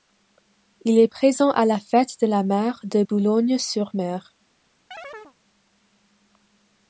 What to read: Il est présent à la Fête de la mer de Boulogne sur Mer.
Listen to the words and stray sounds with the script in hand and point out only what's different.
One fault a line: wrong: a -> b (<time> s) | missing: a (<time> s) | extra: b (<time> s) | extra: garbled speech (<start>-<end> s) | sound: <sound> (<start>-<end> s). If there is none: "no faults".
sound: chirp (4.9-5.4 s)